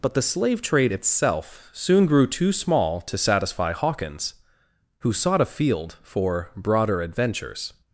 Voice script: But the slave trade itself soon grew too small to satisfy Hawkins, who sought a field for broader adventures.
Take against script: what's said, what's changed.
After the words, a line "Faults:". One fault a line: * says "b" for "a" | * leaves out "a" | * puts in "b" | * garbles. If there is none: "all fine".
But the slave trade itself soon grew too small to satisfy Hawkins, who sought a field for broader adventures.
Faults:
all fine